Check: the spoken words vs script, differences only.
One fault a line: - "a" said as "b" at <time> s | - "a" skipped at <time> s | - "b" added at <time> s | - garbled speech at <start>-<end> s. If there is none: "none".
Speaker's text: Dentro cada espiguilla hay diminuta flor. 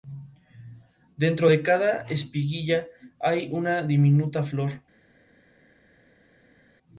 - "de" added at 1.5 s
- "una" added at 3.5 s